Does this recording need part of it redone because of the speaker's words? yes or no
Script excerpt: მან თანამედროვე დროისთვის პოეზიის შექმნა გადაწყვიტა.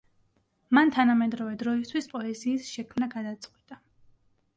no